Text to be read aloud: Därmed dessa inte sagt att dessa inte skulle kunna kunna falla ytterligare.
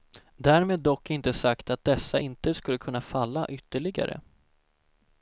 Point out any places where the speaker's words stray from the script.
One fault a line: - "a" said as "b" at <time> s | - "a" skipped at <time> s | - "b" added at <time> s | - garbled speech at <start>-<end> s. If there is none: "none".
- "dessa" said as "dock" at 0.8 s
- "kunna" skipped at 3.0 s